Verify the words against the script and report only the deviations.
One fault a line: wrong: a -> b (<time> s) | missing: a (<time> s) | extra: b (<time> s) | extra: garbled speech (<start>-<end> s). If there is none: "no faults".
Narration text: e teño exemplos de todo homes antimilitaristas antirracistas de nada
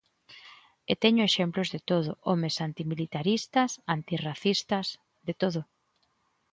wrong: nada -> todo (5.4 s)